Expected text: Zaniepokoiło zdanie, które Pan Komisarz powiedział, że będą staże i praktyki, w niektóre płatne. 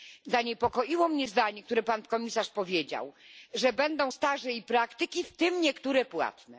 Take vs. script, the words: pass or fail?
fail